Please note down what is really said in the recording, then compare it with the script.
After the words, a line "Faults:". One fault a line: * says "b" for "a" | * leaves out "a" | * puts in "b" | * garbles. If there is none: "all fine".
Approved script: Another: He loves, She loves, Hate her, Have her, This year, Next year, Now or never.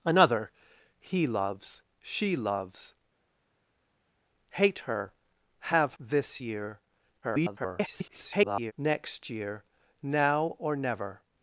Another: He loves, She loves, Hate her, Have This year, [garbled] Next year, Now or never.
Faults:
* leaves out "her"
* garbles